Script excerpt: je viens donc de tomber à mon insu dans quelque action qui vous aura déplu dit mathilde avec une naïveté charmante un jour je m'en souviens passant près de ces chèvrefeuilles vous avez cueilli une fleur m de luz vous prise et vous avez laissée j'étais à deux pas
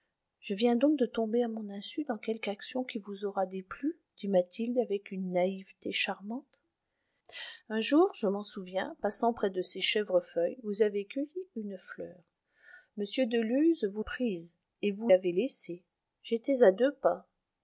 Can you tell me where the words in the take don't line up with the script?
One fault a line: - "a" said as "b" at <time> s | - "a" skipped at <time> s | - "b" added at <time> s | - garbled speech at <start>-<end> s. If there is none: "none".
none